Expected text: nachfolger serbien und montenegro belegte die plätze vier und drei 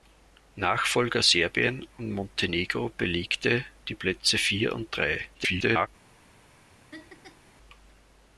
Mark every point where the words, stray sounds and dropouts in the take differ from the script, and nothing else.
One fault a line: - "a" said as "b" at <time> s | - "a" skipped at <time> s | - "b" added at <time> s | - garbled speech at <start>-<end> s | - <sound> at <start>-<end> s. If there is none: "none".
- garbled speech at 5.3-5.9 s
- laugh at 6.9-7.5 s